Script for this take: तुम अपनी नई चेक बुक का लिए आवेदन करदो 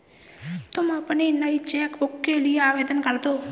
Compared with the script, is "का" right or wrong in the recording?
wrong